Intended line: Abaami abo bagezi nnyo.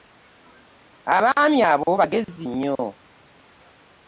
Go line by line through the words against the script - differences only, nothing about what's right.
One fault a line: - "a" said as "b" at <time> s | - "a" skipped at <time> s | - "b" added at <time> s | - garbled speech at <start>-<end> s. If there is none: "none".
none